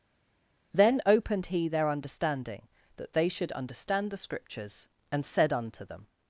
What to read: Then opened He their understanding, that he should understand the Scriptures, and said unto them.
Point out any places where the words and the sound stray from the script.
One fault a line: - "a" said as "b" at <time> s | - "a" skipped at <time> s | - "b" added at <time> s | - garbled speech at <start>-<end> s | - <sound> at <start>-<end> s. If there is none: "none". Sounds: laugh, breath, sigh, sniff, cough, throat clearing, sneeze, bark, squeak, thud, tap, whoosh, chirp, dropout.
- "he" said as "they" at 3.1 s